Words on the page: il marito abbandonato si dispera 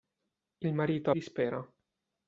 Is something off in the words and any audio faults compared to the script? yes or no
yes